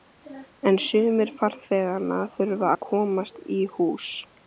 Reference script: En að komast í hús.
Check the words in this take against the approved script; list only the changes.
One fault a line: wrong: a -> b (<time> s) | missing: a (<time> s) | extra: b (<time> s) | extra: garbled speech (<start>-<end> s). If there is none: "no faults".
extra: sumir farþeganna þurfa (0.8 s)